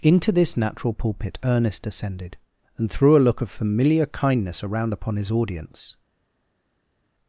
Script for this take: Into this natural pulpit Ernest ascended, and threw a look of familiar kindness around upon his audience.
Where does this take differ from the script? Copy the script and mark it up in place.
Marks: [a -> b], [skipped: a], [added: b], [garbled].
Into this natural pulpit Ernest ascended, and threw a look of familiar kindness around upon his audience.